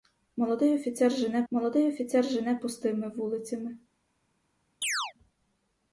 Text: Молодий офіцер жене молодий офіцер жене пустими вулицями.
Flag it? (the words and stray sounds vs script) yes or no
yes